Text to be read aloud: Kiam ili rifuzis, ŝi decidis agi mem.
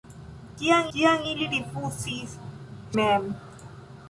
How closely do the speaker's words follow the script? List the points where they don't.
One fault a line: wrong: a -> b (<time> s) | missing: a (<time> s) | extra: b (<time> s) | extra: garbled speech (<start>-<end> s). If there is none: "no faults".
extra: kiam (0.9 s)
missing: ŝi decidis agi (2.4 s)